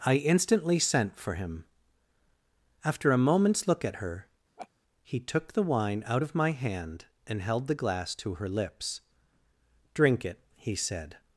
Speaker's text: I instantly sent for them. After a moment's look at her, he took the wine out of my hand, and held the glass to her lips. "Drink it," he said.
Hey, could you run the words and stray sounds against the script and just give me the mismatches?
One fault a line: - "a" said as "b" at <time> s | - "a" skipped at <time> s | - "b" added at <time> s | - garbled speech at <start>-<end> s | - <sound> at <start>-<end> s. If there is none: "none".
- "them" said as "him" at 1.4 s
- laugh at 4.6-4.7 s